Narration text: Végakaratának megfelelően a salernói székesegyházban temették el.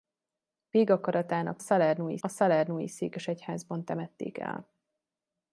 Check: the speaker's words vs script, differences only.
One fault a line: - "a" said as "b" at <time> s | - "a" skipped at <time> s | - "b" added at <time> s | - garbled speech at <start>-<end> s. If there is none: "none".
- "megfelelően" said as "salernói" at 1.6 s